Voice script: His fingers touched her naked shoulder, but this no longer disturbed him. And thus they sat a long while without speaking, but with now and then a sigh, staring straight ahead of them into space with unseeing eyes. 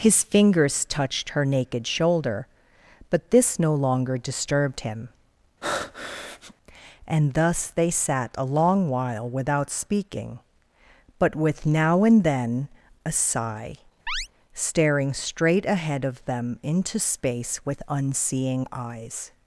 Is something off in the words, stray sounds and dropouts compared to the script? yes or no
yes